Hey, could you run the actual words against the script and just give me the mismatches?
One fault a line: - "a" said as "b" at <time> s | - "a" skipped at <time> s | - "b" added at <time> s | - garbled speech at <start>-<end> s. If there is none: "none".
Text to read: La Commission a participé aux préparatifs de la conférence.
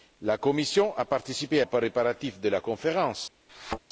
none